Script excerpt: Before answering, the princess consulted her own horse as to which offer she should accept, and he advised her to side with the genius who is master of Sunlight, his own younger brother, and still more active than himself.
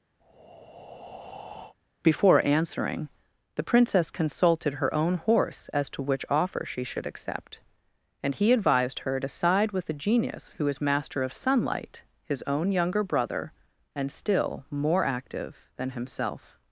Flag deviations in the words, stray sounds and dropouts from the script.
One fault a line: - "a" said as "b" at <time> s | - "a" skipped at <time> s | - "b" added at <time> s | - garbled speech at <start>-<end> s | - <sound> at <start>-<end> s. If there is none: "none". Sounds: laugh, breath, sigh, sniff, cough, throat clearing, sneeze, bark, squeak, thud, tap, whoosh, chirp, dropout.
- breath at 0.2-1.8 s